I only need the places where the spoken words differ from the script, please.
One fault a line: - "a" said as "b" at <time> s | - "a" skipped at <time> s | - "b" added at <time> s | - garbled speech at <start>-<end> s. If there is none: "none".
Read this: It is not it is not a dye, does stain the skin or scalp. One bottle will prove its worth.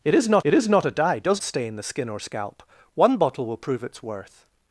none